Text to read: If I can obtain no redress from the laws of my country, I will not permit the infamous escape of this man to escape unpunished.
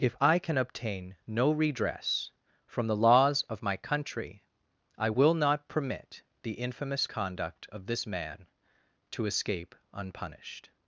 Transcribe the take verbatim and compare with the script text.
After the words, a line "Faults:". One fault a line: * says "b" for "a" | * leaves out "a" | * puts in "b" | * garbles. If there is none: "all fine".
If I can obtain no redress from the laws of my country, I will not permit the infamous conduct of this man to escape unpunished.
Faults:
* says "conduct" for "escape"